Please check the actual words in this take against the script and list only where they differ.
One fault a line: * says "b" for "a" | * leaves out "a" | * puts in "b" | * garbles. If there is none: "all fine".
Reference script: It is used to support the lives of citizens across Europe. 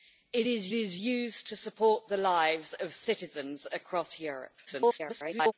* puts in "is"
* garbles